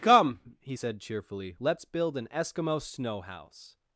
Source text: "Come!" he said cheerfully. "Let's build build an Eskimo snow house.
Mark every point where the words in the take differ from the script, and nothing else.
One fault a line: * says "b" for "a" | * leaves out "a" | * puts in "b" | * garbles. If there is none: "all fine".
* leaves out "build"